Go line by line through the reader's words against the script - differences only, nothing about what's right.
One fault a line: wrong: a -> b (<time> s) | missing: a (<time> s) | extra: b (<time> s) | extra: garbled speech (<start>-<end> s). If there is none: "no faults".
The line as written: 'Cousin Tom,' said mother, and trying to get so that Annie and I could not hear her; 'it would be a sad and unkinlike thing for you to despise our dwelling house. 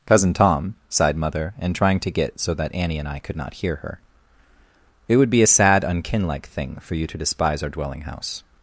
wrong: said -> sighed (0.9 s)
missing: and (5.8 s)